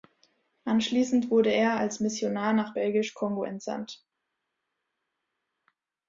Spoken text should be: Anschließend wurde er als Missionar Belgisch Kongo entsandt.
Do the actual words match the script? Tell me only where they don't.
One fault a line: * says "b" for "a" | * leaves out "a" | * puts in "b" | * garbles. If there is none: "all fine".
* puts in "nach"